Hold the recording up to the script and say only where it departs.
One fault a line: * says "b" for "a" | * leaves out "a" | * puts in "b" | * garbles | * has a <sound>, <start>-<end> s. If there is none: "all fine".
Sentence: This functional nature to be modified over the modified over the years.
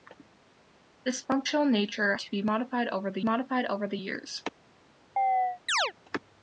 * has a chirp, 5.2-5.9 s